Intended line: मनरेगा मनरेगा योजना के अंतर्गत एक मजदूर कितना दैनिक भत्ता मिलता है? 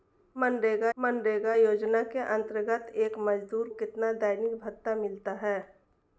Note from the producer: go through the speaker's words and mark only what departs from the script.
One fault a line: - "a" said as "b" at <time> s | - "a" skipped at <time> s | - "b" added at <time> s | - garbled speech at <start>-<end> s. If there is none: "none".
none